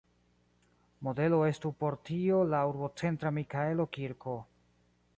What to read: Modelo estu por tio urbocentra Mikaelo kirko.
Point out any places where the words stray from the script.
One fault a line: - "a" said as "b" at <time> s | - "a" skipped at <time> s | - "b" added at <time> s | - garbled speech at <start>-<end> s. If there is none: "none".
- "la" added at 2.5 s